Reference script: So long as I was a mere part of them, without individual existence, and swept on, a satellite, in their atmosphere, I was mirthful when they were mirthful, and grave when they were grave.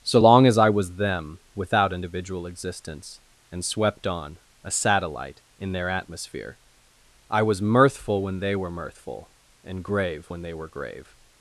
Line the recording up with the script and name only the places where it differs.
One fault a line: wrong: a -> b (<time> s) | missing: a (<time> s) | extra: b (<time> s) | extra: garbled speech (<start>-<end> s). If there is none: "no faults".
missing: a mere part of (1.0 s)